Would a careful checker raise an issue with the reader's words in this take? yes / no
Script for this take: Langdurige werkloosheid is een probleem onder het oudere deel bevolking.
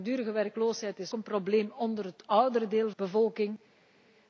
no